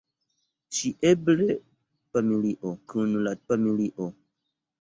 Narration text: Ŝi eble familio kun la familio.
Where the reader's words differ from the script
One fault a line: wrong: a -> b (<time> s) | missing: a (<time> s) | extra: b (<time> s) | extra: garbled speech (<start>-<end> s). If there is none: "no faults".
no faults